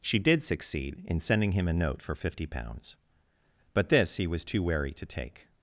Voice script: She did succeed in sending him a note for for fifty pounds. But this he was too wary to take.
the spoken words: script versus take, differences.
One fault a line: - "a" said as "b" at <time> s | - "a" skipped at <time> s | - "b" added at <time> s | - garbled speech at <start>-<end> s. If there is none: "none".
- "for" skipped at 2.2 s